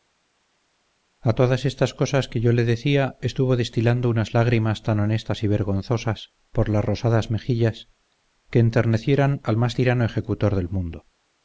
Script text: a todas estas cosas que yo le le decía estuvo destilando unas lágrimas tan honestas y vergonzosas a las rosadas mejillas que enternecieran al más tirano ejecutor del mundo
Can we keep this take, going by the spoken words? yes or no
no